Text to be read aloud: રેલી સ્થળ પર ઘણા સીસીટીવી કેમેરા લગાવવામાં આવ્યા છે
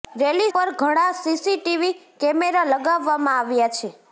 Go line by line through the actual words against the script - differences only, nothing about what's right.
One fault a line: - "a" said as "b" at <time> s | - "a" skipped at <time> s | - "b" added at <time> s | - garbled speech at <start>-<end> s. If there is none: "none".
- "સ્થળ" skipped at 0.5 s